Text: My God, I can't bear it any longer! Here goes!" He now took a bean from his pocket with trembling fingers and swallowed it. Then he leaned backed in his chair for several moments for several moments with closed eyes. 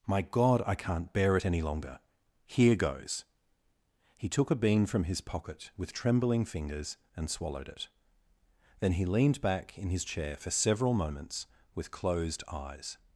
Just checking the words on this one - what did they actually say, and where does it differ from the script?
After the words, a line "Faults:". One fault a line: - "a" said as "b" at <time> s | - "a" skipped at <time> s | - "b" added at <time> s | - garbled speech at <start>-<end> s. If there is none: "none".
My God, I can't bear it any longer! Here goes!" He took a bean from his pocket with trembling fingers and swallowed it. Then he leaned back in his chair for several moments with closed eyes.
Faults:
- "now" skipped at 4.3 s
- "backed" said as "back" at 9.4 s
- "for several moments" skipped at 11.5 s